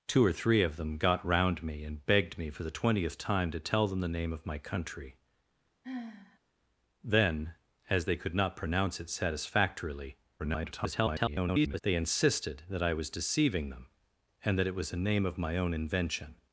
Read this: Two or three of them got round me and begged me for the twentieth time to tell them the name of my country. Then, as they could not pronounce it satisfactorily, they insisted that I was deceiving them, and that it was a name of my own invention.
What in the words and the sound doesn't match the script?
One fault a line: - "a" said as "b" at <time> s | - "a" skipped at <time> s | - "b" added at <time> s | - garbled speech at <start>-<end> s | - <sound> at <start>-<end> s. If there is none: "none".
- sigh at 5.8-6.4 s
- garbled speech at 10.4-11.8 s